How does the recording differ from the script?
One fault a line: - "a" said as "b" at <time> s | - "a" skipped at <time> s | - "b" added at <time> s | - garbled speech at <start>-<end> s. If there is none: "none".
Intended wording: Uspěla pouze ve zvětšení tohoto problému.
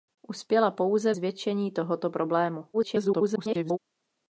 - "ve" skipped at 1.1 s
- garbled speech at 2.7-3.8 s